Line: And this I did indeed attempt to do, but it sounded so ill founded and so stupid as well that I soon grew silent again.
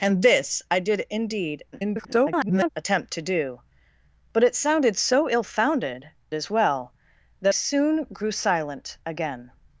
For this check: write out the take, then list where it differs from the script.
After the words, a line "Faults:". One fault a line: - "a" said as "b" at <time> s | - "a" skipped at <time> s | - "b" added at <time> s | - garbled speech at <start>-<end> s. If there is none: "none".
And this I did indeed [garbled] attempt to do, but it sounded so ill founded as well that soon grew silent again.
Faults:
- garbled speech at 1.7-2.7 s
- "and so stupid" skipped at 6.1 s
- "I" skipped at 7.5 s